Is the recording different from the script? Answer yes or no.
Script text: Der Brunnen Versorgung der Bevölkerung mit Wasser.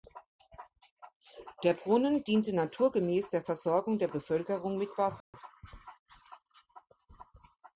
yes